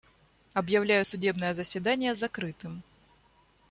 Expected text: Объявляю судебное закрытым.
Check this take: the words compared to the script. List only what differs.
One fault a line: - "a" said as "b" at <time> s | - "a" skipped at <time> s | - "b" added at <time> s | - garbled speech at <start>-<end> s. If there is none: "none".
- "заседание" added at 1.5 s